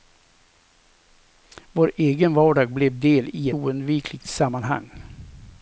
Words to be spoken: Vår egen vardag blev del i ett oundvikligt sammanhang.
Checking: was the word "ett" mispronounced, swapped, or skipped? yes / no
yes